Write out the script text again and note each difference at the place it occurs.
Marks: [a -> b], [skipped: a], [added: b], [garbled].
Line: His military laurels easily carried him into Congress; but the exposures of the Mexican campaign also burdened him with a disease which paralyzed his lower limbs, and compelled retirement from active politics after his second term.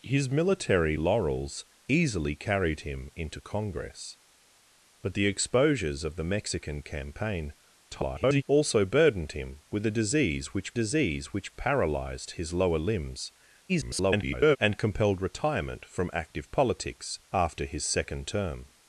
His military laurels easily carried him into Congress; but the exposures of the Mexican campaign [garbled] also burdened him with a disease which [added: disease which] paralyzed his lower limbs, [garbled] and compelled retirement from active politics after his second term.